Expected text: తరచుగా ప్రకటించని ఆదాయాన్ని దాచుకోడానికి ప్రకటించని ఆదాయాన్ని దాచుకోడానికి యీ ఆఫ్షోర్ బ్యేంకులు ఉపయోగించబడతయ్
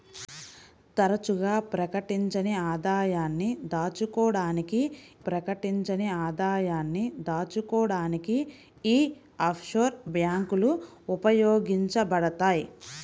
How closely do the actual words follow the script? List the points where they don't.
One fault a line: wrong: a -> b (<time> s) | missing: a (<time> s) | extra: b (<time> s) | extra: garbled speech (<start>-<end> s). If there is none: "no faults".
no faults